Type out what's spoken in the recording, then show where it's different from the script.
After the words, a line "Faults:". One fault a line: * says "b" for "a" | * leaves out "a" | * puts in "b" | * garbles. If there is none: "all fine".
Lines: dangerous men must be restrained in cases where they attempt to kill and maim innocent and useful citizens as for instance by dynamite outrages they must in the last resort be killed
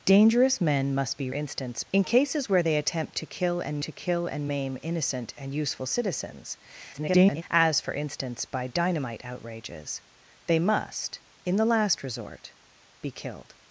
dangerous men must be instance in cases where they attempt to kill and to kill and maim innocent and useful citizens [garbled] as for instance by dynamite outrages they must in the last resort be killed
Faults:
* says "instance" for "restrained"
* puts in "to kill and"
* garbles